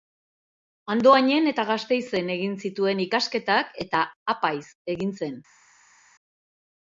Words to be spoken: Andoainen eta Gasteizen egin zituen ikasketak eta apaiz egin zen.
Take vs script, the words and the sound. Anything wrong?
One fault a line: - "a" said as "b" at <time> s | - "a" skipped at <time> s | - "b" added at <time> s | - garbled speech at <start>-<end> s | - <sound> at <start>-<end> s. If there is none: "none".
none